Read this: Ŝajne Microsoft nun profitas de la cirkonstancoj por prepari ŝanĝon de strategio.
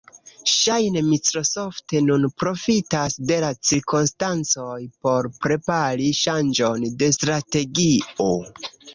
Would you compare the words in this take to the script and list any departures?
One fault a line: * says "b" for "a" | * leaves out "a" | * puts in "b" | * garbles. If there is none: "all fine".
all fine